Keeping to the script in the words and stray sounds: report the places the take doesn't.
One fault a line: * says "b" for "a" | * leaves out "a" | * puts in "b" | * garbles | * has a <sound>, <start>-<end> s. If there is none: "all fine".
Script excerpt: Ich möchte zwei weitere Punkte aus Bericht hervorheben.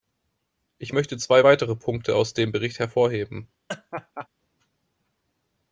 * puts in "dem"
* has a laugh, 3.7-4.3 s